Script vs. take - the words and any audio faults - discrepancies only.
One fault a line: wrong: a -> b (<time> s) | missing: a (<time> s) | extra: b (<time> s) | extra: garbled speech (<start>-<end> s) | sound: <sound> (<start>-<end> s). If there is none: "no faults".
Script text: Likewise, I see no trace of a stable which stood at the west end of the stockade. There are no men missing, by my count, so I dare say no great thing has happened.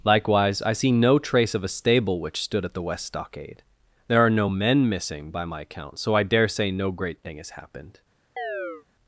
missing: end of the (3.0 s)
sound: chirp (8.4-8.9 s)